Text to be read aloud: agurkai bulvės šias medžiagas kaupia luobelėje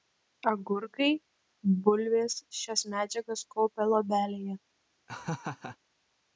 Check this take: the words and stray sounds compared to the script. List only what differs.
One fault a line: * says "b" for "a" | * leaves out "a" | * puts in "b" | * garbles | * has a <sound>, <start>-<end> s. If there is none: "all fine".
* has a laugh, 5.1-5.8 s